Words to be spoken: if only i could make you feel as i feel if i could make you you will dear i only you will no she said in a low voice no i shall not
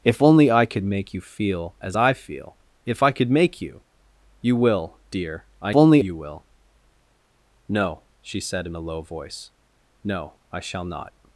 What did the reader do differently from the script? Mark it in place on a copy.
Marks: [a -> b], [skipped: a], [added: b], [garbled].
if only i could make you feel as i feel if i could make you you will dear i only you will no she said in a low voice no i shall not